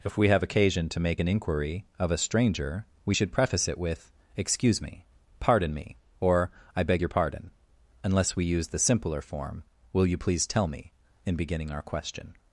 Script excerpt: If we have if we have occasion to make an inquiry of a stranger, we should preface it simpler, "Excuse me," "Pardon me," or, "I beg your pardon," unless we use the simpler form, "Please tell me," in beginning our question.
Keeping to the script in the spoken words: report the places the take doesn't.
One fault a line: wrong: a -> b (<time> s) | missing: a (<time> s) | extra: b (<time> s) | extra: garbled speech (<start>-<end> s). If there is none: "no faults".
missing: if we have (0.4 s)
wrong: simpler -> with (3.8 s)
extra: Will you (9.9 s)